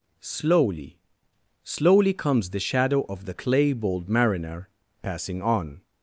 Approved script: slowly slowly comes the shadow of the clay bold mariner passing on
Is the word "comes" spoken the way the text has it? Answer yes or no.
yes